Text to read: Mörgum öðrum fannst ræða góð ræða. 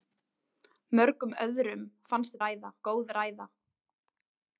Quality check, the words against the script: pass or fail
pass